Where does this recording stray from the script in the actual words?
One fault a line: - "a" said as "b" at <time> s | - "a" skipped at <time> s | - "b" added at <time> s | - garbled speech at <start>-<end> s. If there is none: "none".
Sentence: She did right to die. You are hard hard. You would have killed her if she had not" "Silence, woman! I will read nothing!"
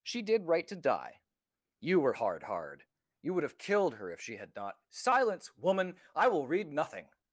- "are" said as "were" at 2.0 s